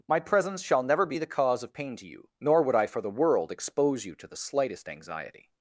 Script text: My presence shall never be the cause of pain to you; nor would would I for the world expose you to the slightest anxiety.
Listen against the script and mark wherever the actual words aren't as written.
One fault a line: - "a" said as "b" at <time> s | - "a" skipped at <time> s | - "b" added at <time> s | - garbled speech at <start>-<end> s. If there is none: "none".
- "would" skipped at 2.8 s